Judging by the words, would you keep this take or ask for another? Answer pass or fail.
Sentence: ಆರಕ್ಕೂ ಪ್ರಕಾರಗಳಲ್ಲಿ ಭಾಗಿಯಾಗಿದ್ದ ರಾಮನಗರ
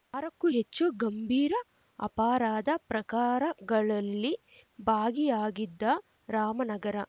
fail